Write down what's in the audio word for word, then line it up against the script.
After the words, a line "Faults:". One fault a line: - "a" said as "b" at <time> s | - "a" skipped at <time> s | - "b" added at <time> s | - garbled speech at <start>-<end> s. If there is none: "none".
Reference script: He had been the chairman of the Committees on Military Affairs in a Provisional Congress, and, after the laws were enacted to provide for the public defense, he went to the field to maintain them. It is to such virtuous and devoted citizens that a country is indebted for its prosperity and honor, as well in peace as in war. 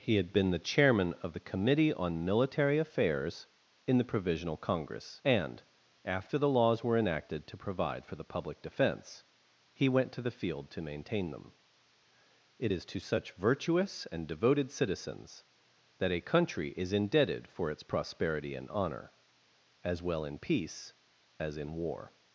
He had been the chairman of the Committee on Military Affairs in the Provisional Congress, and, after the laws were enacted to provide for the public defense, he went to the field to maintain them. It is to such virtuous and devoted citizens that a country is indebted for its prosperity and honor, as well in peace as in war.
Faults:
- "Committees" said as "Committee" at 1.5 s
- "a" said as "the" at 4.0 s